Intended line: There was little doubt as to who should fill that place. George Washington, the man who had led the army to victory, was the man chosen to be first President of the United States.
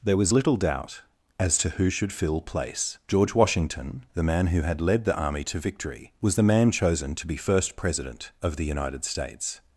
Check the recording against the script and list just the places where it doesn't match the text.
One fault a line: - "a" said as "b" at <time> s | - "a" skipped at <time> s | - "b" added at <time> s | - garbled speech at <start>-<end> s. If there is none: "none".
- "that" skipped at 2.4 s